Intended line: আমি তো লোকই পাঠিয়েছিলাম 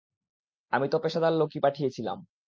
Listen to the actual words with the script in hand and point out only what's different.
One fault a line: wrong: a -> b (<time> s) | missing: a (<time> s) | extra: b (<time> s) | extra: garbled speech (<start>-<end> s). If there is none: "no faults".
extra: পেশাদার (1.0 s)